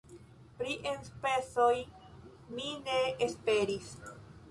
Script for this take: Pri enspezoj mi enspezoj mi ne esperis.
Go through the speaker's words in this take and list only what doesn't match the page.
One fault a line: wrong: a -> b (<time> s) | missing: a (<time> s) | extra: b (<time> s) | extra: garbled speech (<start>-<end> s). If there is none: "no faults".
missing: enspezoj mi (2.7 s)